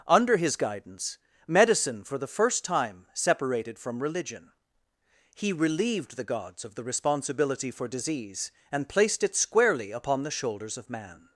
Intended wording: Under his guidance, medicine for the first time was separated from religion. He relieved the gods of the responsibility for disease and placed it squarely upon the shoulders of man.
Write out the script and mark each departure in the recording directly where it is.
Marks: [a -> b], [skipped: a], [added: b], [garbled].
Under his guidance, medicine for the first time [skipped: was] separated from religion. He relieved the gods of the responsibility for disease and placed it squarely upon the shoulders of man.